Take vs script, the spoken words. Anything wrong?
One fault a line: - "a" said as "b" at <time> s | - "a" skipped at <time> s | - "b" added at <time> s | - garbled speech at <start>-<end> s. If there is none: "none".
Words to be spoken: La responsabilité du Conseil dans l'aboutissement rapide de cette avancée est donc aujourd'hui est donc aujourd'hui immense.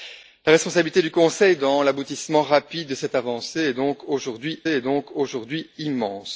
none